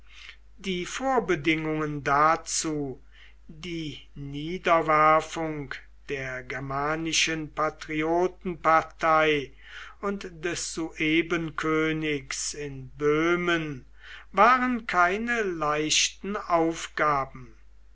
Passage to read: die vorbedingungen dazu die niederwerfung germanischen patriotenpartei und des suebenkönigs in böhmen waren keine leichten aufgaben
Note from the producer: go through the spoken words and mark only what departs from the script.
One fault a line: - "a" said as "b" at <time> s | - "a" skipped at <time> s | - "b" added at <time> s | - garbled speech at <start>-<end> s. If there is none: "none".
- "der" added at 6.1 s